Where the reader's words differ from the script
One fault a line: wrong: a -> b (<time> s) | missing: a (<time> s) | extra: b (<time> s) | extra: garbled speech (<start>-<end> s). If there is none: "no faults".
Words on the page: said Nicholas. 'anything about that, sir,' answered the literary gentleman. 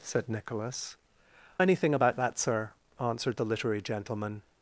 no faults